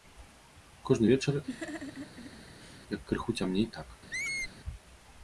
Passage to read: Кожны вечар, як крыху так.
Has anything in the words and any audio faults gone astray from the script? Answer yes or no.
yes